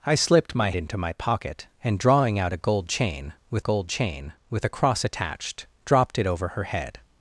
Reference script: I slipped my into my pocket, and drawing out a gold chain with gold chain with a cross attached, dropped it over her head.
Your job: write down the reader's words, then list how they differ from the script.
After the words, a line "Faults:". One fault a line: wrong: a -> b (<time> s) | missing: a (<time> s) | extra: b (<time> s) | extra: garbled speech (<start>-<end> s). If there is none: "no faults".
I slipped my into my pocket, and drawing out a gold chain with gold chain with a cross attached, dropped it over her head.
Faults:
no faults